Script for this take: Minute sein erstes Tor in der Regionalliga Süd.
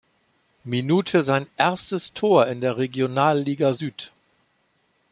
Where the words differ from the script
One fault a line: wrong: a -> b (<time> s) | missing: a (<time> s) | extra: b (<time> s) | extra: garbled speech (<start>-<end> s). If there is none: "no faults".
no faults